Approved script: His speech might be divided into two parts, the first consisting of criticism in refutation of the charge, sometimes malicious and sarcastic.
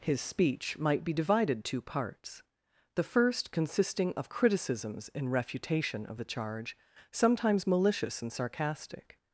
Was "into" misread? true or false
true